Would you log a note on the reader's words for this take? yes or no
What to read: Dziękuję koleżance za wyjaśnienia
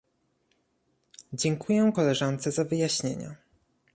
no